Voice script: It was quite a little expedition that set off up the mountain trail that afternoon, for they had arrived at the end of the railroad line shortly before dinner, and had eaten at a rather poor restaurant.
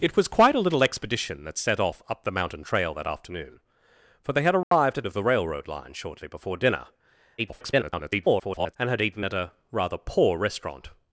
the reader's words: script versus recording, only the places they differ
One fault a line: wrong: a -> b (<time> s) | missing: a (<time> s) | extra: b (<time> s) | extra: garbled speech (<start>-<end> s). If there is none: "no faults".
missing: the end (5.0 s)
extra: garbled speech (7.4-8.8 s)